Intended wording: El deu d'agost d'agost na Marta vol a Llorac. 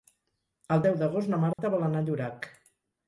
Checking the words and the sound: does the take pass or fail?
fail